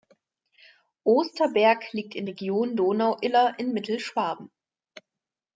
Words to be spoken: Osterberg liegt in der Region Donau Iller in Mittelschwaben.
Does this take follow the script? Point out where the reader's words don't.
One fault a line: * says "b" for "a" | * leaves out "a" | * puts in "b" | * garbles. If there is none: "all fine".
* leaves out "der"